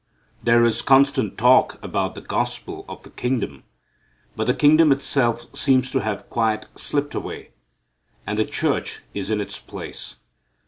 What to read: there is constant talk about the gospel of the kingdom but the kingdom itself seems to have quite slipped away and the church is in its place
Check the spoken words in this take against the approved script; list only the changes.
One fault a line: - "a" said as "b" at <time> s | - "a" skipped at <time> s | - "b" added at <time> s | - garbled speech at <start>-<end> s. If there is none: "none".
none